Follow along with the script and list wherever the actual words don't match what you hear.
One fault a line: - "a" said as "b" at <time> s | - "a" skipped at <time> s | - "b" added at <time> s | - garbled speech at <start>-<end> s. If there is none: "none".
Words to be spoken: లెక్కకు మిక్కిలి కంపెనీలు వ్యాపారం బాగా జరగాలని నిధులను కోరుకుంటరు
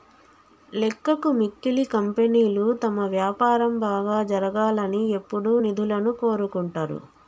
- "తమ" added at 2.8 s
- "ఎప్పుడూ" added at 5.2 s